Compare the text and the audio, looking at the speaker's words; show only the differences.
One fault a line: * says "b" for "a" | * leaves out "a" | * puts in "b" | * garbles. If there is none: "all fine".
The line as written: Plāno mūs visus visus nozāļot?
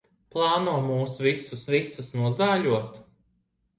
all fine